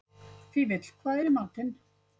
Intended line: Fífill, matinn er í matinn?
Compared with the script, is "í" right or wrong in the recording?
right